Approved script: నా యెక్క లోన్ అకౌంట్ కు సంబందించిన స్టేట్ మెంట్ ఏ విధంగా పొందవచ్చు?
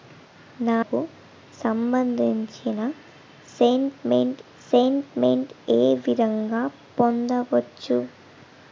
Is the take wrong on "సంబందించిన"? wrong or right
wrong